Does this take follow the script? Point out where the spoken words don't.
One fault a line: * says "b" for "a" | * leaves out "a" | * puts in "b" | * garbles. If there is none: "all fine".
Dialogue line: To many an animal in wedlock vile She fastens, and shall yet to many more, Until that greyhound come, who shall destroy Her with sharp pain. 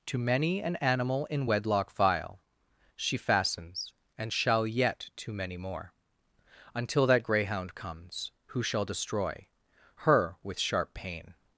* says "comes" for "come"